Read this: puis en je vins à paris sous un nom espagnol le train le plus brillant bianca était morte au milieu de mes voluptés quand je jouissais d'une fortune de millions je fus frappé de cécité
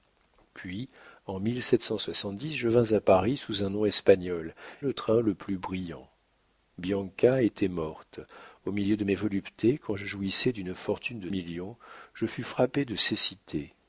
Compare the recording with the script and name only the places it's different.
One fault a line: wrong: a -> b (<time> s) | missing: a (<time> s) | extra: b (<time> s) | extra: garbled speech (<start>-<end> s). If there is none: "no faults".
no faults